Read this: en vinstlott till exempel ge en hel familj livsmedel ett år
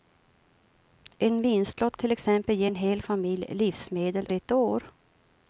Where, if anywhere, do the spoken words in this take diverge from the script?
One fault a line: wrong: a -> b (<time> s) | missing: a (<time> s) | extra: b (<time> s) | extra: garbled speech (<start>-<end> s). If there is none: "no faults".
no faults